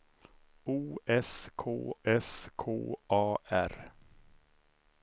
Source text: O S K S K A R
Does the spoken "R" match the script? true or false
true